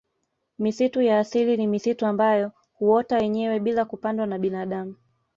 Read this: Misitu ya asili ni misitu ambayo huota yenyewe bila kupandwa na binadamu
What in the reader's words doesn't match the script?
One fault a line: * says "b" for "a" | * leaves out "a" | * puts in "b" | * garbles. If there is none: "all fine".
all fine